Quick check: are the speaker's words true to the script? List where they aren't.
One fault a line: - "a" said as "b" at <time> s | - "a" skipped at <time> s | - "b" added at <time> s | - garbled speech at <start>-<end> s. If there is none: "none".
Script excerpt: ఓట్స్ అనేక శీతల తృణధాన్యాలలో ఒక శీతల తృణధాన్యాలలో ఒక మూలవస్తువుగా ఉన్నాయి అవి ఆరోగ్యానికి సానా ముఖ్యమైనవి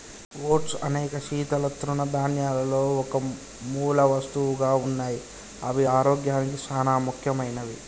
- "శీతల తృణధాన్యాలలో ఒక" skipped at 3.2 s